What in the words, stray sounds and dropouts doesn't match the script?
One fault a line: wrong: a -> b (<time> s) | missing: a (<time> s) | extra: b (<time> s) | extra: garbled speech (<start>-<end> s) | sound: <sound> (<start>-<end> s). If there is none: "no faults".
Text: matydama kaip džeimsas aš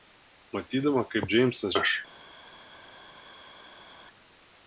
no faults